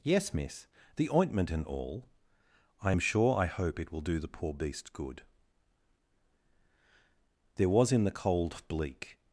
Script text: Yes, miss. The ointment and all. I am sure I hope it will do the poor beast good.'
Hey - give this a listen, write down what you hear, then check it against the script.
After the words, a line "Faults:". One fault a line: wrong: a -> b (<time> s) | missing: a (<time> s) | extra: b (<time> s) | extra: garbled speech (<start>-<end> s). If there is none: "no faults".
Yes, miss. The ointment and all. I am sure I hope it will do the poor beast good.' There was in the cold bleak
Faults:
extra: There was in the cold bleak (7.6 s)